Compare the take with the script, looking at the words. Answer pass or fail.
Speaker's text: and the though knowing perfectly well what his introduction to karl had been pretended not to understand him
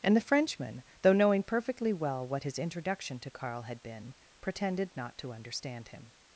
fail